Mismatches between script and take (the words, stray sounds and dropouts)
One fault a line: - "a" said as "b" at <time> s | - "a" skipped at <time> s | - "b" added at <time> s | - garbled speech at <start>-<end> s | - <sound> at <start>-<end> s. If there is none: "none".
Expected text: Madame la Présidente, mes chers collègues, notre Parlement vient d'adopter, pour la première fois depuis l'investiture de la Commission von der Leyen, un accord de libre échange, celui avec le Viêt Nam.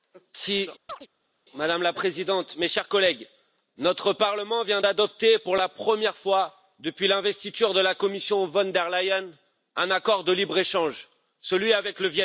- chirp at 0.9-1.1 s